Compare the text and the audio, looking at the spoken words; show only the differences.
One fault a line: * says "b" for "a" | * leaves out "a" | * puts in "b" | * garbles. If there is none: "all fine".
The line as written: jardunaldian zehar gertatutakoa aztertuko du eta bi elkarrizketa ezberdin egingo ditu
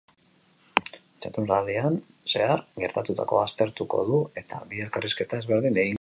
all fine